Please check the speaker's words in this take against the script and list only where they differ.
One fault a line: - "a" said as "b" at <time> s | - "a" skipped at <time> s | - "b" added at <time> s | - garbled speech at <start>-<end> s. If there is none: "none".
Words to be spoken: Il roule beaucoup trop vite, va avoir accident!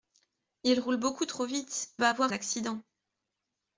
none